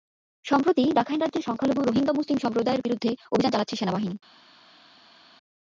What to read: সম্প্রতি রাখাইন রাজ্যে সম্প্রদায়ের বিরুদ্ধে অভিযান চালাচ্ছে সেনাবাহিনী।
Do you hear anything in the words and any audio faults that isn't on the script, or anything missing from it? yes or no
yes